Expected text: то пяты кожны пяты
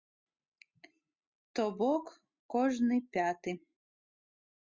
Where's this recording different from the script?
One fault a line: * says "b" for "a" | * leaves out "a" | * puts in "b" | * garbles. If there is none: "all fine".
* says "бок" for "пяты"